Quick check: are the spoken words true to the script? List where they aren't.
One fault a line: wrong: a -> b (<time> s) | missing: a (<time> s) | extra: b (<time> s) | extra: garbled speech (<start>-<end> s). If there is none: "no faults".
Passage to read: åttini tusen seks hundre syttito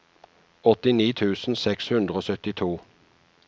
extra: og (2.1 s)